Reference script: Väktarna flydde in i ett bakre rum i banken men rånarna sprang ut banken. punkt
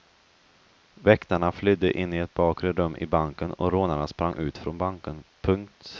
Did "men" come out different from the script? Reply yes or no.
yes